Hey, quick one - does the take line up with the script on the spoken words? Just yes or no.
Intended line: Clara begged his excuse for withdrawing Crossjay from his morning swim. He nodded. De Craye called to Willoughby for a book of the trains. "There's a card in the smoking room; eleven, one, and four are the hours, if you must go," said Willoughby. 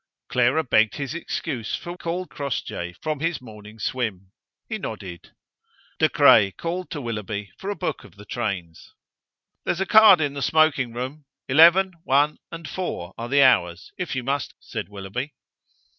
no